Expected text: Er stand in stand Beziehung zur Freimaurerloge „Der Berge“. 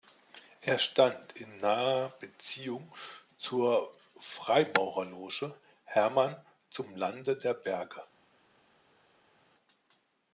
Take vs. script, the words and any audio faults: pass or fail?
fail